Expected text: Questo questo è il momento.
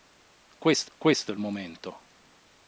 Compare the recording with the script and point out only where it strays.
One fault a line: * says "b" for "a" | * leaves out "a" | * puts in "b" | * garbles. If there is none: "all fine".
all fine